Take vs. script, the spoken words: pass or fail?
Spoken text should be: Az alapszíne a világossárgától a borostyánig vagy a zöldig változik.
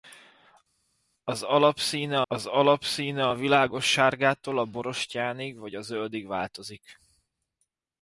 fail